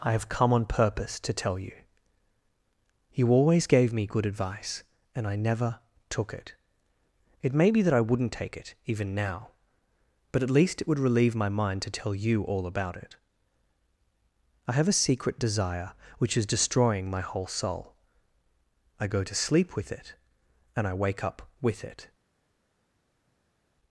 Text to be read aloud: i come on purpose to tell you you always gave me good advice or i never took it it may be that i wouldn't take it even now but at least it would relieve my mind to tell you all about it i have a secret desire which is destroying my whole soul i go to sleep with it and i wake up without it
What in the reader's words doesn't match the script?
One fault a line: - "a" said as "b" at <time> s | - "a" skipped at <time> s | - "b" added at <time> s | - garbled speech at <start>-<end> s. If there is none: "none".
- "have" added at 0.1 s
- "or" said as "and" at 5.1 s
- "without" said as "with" at 21.6 s